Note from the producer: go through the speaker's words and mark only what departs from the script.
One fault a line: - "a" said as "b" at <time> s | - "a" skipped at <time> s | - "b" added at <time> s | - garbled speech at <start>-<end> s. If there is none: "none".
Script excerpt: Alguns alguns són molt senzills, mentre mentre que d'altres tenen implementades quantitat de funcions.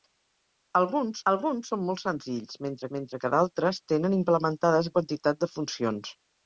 none